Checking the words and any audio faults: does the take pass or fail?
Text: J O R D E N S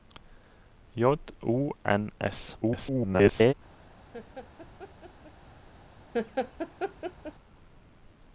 fail